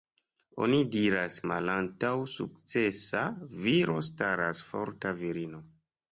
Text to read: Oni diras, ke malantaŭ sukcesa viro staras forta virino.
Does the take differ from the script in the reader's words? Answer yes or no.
yes